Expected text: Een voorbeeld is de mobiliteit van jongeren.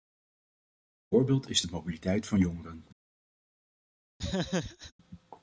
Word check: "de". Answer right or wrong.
right